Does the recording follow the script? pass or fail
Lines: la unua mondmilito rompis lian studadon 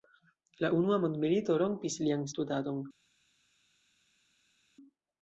pass